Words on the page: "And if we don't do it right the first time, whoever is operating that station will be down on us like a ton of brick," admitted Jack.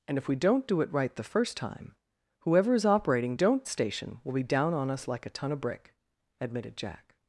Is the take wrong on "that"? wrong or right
wrong